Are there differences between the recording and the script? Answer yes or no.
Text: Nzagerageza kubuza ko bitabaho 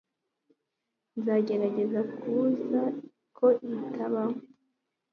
no